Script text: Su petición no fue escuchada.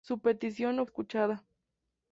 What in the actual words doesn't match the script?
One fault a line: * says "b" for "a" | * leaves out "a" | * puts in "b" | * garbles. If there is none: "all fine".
* leaves out "fue"